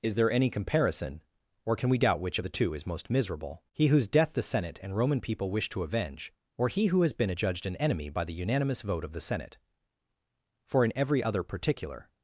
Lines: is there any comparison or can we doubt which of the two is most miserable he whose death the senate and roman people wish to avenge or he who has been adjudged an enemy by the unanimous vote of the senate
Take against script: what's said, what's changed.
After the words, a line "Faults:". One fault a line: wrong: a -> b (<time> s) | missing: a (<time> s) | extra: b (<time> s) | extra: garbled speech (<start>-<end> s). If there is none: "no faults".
is there any comparison or can we doubt which of the two is most miserable he whose death the senate and roman people wish to avenge or he who has been adjudged an enemy by the unanimous vote of the senate for in every other particular
Faults:
extra: for in every other particular (10.6 s)